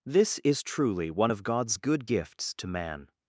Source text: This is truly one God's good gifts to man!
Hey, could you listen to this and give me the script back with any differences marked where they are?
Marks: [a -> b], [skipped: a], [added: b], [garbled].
This is truly one [added: of] God's good gifts to man!